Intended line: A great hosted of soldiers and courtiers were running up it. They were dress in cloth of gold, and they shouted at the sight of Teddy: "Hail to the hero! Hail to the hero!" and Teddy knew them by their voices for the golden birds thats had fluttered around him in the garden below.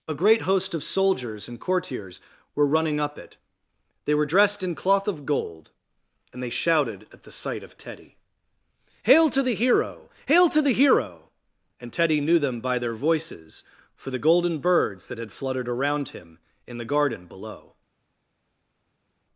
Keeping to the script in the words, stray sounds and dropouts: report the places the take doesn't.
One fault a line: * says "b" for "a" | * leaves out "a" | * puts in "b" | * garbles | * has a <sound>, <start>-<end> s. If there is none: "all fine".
* says "host" for "hosted"
* says "dressed" for "dress"
* says "that" for "thats"